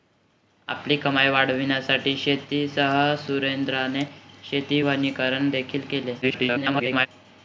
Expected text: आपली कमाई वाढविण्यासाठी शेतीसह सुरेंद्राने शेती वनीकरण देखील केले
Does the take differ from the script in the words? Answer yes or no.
yes